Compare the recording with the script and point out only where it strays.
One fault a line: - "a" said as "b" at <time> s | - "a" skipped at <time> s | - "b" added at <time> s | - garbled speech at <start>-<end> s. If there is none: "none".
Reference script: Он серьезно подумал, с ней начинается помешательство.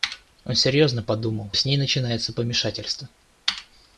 none